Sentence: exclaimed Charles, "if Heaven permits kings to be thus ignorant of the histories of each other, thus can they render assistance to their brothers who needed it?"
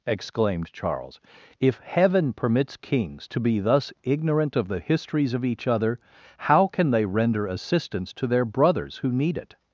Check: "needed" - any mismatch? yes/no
yes